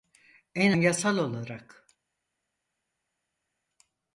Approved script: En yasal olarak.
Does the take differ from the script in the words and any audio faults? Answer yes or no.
no